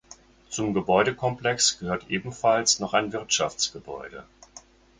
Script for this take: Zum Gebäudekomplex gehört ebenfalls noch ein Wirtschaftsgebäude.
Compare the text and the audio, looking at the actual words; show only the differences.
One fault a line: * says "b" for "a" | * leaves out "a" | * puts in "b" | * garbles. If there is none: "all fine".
all fine